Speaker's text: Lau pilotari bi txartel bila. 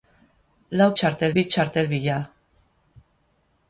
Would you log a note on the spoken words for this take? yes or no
yes